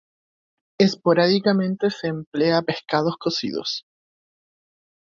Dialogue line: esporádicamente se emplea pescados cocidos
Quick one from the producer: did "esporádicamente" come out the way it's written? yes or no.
yes